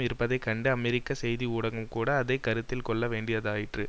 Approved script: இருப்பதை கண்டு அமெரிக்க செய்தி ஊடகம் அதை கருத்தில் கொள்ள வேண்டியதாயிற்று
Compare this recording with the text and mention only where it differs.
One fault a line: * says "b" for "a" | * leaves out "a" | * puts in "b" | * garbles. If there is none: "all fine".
* puts in "கூட"